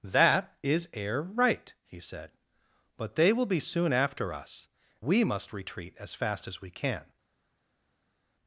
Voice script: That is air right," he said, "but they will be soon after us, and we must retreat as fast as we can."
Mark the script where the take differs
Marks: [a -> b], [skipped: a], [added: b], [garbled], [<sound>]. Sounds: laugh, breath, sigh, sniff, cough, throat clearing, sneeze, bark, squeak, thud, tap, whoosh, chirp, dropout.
That is air right," he said, "but they will be soon after us, [skipped: and] we must retreat as fast as we can."